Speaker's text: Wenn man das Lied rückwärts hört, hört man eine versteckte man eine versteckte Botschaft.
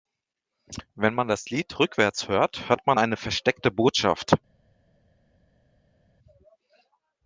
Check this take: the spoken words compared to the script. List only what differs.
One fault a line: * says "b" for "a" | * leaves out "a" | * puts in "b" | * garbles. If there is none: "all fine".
* leaves out "man eine versteckte"